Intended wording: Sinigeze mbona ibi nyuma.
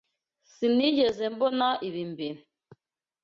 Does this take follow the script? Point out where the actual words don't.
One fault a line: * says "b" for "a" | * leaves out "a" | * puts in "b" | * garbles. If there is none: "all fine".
* says "mbere" for "nyuma"